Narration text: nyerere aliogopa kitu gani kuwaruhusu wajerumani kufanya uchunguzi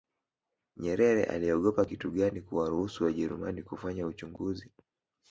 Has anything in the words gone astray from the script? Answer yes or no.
no